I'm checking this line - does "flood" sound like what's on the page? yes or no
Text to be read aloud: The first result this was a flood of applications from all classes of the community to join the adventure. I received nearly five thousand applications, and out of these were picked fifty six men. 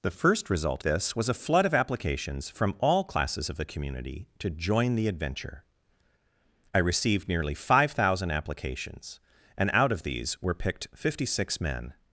yes